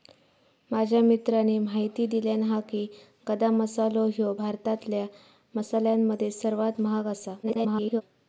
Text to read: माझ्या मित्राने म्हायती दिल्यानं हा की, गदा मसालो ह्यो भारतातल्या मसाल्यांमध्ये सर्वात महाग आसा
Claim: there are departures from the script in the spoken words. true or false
true